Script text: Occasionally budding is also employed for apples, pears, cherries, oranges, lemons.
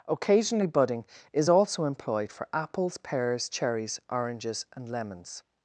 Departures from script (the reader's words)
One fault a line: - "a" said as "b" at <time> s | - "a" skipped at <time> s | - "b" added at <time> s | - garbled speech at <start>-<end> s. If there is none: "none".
- "and" added at 4.7 s